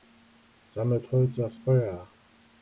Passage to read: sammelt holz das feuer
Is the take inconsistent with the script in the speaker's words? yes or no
no